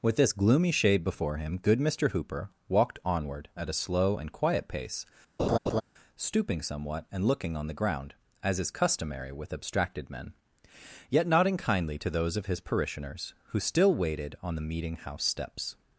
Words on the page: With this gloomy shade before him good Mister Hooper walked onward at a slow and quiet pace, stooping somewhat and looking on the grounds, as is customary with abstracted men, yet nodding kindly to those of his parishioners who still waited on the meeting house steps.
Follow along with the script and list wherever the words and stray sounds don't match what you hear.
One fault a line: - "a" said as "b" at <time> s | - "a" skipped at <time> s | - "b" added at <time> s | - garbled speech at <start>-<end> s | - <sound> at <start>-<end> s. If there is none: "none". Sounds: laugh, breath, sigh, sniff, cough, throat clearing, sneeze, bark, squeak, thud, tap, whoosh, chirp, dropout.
- laugh at 5.4-5.8 s
- "grounds" said as "ground" at 7.7 s